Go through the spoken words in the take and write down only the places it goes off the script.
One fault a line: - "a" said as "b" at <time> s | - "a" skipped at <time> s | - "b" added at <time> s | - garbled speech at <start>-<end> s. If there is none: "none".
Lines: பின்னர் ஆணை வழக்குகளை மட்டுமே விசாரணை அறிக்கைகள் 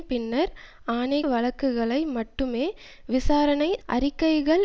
none